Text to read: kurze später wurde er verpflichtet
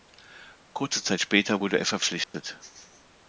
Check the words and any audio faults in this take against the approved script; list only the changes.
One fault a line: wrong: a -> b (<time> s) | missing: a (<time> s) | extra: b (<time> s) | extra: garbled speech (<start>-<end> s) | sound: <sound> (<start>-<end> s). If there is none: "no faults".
extra: zeit (1.0 s)
sound: dropout (2.2-2.3 s)